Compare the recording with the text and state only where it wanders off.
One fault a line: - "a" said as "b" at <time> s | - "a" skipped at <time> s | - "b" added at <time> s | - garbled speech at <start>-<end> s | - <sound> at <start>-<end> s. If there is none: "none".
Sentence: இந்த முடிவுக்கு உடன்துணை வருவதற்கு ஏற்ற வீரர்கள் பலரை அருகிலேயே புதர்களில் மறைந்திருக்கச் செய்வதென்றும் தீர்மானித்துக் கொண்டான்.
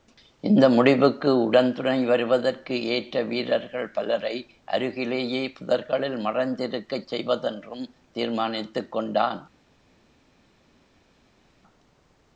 none